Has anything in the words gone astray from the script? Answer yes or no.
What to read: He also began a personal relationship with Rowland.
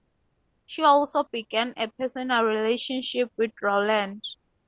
yes